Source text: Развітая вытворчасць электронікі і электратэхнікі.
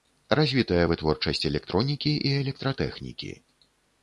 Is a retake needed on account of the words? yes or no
no